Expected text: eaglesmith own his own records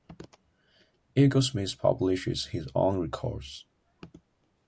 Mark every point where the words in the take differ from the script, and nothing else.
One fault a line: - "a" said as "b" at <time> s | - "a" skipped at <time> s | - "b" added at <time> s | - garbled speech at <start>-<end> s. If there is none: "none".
- "own" said as "publishes" at 1.8 s